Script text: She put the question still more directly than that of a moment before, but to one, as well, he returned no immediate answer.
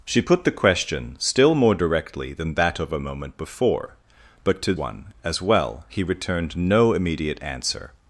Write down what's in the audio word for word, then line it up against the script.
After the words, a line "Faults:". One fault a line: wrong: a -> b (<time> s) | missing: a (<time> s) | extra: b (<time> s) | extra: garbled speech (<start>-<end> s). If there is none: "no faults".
She put the question still more directly than that of a moment before, but to one, as well, he returned no immediate answer.
Faults:
no faults